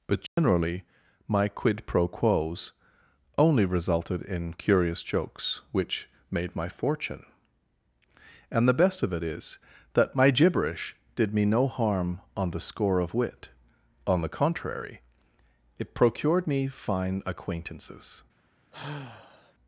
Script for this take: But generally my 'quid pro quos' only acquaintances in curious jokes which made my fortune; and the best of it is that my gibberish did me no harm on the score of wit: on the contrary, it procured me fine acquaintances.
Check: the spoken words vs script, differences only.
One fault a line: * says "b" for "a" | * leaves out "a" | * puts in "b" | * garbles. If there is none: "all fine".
* says "resulted" for "acquaintances"